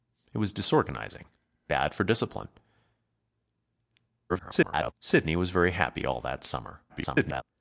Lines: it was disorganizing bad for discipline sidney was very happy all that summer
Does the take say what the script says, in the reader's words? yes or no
no